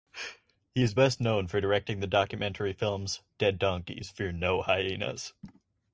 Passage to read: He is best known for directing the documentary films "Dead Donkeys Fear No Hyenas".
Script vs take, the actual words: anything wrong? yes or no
no